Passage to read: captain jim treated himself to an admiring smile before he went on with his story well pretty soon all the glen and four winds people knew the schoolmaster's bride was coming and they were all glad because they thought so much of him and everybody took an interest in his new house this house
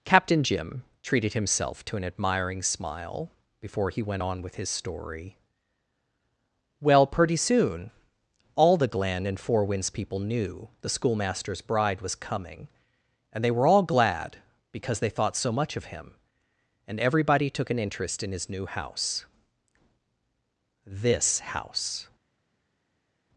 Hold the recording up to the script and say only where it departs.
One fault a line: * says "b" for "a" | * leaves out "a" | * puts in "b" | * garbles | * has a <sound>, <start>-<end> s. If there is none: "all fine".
all fine